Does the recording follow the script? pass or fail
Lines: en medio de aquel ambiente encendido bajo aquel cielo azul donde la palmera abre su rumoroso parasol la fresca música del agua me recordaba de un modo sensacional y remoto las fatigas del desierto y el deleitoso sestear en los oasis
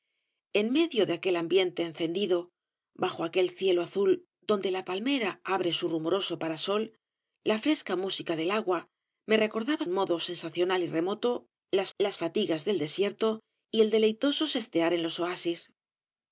fail